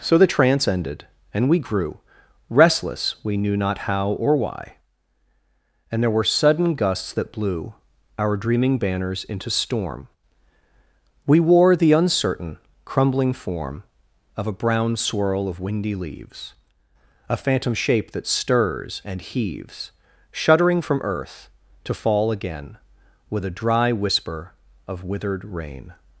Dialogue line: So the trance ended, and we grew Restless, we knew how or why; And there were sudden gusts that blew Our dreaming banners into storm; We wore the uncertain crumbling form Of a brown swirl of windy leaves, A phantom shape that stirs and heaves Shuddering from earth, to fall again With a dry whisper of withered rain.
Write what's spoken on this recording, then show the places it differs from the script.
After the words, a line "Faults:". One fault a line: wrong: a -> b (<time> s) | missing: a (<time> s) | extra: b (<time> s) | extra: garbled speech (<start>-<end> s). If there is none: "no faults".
So the trance ended, and we grew Restless, we knew not how or why; And there were sudden gusts that blew Our dreaming banners into storm; We wore the uncertain crumbling form Of a brown swirl of windy leaves, A phantom shape that stirs and heaves Shuddering from earth, to fall again With a dry whisper of withered rain.
Faults:
extra: not (3.5 s)